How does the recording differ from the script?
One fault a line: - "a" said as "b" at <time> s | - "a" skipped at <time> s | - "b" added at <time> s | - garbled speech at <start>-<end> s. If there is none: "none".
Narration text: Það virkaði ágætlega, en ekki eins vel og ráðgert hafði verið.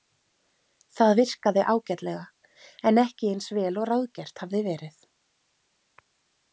none